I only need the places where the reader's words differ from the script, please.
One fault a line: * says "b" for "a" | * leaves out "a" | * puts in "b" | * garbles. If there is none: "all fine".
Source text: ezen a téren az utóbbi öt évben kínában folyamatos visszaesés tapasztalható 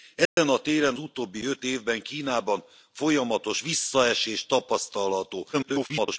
* leaves out "az"
* garbles